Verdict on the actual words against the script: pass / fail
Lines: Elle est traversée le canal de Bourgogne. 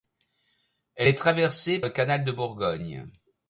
pass